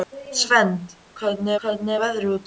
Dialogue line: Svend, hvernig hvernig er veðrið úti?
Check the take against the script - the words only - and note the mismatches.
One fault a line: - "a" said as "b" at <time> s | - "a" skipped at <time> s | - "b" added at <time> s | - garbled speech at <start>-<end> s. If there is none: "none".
none